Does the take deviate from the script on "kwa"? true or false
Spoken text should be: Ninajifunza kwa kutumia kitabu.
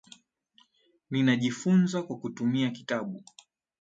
false